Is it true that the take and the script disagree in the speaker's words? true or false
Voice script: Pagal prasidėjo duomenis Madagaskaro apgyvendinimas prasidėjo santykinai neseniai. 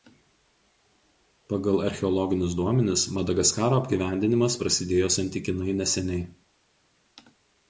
true